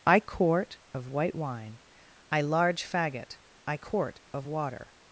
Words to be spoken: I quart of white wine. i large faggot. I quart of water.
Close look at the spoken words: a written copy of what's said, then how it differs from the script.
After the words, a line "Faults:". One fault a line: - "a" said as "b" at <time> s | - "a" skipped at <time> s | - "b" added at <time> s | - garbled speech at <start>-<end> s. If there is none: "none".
I quart of white wine. i large faggot. I quart of water.
Faults:
none